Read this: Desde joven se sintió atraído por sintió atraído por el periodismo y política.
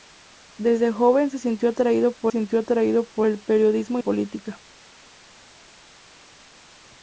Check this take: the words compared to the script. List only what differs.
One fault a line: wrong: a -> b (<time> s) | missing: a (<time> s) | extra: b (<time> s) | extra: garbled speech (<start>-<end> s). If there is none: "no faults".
no faults